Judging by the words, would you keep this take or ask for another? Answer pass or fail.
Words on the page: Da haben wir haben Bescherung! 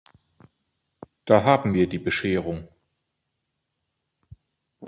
fail